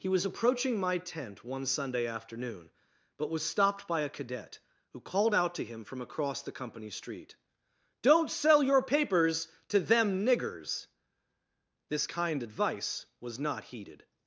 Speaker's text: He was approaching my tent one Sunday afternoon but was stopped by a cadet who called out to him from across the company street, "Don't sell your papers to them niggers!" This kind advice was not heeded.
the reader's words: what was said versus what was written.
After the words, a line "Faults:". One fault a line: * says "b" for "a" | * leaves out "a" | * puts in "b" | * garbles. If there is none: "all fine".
He was approaching my tent one Sunday afternoon but was stopped by a cadet who called out to him from across the company street, "Don't sell your papers to them niggers!" This kind advice was not heeded.
Faults:
all fine